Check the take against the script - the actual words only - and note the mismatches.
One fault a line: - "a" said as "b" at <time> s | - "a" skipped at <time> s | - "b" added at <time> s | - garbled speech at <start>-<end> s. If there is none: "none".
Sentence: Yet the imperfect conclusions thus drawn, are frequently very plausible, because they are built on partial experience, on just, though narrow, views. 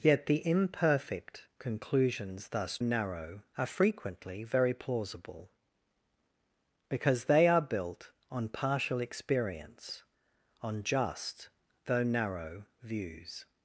- "drawn" said as "narrow" at 2.8 s